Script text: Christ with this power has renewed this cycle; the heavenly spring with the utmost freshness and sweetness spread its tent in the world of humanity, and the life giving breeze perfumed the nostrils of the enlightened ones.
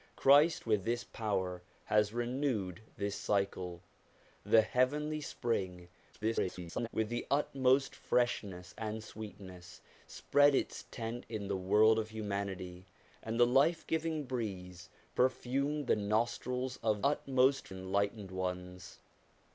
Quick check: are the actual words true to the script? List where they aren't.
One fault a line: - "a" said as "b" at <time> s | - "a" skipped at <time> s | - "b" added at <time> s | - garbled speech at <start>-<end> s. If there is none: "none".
- garbled speech at 6.1-6.9 s
- "the" said as "utmost" at 17.0 s